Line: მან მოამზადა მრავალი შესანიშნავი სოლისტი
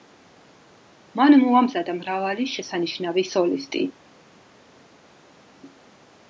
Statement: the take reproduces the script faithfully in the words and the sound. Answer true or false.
true